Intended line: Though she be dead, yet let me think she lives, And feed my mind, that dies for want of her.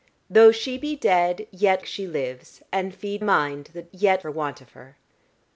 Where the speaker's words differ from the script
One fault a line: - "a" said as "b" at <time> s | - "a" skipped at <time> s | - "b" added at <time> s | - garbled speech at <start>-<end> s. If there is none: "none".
- "let me think" skipped at 1.8 s
- "my" skipped at 3.2 s
- "dies" said as "yet" at 3.9 s